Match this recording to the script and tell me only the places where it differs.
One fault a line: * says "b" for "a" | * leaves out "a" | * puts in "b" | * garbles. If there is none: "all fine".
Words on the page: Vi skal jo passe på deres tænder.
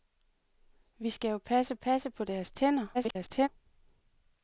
* puts in "passe"
* garbles